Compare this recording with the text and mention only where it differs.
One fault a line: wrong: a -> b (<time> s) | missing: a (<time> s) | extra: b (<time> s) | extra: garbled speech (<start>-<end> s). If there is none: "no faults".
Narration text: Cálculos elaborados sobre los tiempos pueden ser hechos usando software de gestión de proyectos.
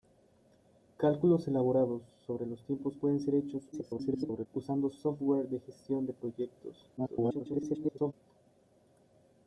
extra: garbled speech (3.7-4.5 s)
extra: garbled speech (7.0-8.1 s)